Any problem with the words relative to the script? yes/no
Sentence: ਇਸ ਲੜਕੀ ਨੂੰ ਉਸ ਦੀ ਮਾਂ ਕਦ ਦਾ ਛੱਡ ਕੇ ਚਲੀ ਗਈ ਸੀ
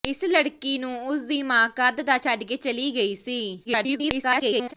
yes